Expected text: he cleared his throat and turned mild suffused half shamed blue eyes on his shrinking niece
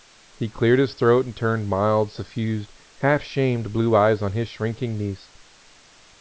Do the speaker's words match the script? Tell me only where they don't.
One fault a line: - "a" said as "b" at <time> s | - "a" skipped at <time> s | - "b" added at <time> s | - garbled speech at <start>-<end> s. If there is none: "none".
none